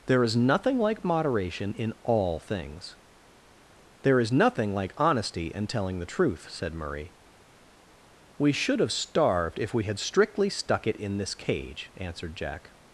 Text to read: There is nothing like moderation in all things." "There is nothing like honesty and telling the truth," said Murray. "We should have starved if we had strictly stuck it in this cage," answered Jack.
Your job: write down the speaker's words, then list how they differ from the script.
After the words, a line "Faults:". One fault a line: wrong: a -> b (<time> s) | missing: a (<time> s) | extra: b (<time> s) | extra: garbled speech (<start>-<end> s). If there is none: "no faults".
There is nothing like moderation in all things." "There is nothing like honesty and telling the truth," said Murray. "We should have starved if we had strictly stuck it in this cage," answered Jack.
Faults:
no faults